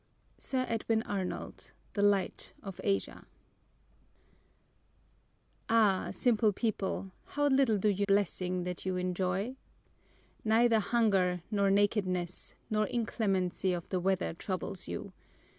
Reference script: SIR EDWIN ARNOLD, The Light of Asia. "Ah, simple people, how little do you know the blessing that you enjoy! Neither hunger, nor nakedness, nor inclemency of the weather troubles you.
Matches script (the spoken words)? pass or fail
fail